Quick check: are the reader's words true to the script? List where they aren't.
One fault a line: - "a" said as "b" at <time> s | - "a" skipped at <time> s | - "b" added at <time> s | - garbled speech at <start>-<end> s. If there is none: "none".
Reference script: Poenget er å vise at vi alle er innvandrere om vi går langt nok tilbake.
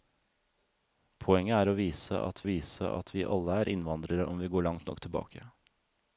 - "vise at" added at 2.5 s